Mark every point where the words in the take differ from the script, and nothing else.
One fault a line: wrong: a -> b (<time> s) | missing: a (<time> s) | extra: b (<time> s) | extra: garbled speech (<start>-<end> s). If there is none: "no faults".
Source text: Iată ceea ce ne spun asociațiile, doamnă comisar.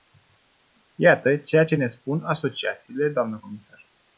no faults